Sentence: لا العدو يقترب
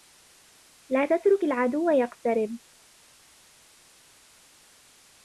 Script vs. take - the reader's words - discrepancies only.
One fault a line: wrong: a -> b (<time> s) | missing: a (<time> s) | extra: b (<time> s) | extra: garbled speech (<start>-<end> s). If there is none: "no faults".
extra: تترك (1.0 s)